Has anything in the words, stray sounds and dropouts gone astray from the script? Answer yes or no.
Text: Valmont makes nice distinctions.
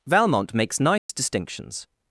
yes